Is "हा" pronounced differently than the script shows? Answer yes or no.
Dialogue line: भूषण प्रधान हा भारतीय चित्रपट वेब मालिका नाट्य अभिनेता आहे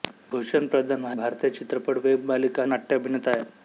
no